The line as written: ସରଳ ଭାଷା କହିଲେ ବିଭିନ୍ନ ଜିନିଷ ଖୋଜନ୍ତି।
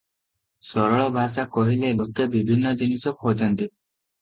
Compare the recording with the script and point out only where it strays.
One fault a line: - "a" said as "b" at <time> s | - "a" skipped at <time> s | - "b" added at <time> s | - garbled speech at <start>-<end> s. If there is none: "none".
- "ଲୋକେ" added at 2.0 s